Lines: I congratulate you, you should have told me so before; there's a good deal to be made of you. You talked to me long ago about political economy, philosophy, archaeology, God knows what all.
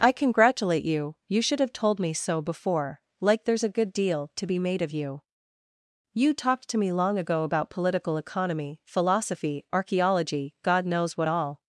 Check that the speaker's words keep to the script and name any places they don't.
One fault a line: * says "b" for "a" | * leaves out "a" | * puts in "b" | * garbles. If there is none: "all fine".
* puts in "like"